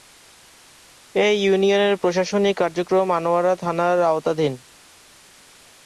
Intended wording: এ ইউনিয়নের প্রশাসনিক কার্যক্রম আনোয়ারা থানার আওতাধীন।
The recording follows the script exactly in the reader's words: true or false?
true